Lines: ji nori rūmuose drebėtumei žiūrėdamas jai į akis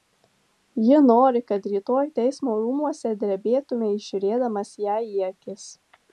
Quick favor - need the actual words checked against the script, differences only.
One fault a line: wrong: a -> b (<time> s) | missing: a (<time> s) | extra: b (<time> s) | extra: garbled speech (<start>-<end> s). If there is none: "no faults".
extra: kad rytoj teismo (1.5 s)